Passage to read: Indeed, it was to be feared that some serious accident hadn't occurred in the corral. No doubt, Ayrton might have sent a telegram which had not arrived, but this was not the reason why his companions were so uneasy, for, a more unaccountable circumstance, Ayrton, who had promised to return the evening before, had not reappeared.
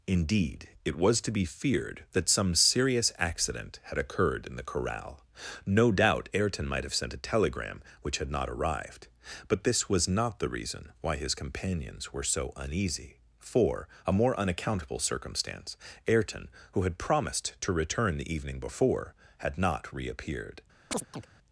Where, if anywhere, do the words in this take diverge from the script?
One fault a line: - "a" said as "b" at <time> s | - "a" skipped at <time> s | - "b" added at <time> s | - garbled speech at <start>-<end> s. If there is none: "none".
- "hadn't" said as "had" at 3.8 s